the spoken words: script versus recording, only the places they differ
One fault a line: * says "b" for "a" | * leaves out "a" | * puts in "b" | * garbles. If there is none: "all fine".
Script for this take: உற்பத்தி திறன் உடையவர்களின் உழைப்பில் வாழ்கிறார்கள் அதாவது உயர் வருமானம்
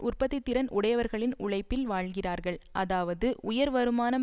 all fine